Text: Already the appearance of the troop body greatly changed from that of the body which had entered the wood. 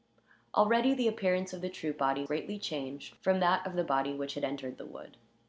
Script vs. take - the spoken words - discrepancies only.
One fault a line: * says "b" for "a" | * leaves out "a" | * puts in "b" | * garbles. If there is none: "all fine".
all fine